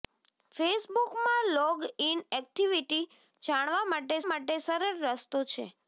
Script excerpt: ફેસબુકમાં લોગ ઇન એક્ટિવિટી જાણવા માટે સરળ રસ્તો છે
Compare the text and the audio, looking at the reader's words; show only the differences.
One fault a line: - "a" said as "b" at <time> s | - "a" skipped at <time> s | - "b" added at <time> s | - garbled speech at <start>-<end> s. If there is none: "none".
- "માટે" added at 4.3 s